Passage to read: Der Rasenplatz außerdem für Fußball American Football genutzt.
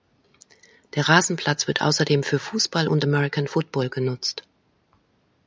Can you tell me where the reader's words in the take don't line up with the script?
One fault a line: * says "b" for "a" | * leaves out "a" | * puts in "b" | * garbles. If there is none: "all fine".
* puts in "wird"
* puts in "und"